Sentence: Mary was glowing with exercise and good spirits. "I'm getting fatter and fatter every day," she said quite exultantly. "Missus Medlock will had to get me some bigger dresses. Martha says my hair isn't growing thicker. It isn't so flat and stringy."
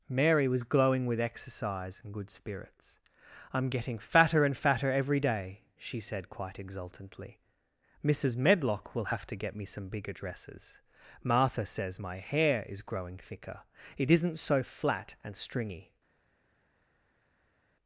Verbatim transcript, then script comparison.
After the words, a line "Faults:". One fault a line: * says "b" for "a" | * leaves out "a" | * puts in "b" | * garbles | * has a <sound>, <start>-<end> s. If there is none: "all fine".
Mary was glowing with exercise and good spirits. "I'm getting fatter and fatter every day," she said quite exultantly. "Missus Medlock will have to get me some bigger dresses. Martha says my hair is growing thicker. It isn't so flat and stringy."
Faults:
* says "have" for "had"
* says "is" for "isn't"